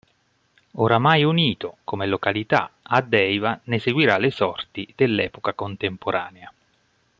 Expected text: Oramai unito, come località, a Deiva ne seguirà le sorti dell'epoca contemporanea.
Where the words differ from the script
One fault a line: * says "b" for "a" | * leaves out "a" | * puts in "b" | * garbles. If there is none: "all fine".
all fine